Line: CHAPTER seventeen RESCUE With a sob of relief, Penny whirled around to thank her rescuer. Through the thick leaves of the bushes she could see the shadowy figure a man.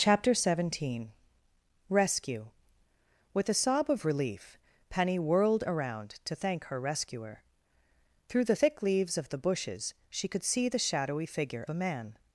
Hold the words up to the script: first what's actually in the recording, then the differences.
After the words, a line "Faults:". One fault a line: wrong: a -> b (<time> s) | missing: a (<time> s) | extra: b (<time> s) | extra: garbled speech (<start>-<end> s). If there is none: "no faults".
CHAPTER seventeen RESCUE With a sob of relief, Penny whirled around to thank her rescuer. Through the thick leaves of the bushes she could see the shadowy figure a man.
Faults:
no faults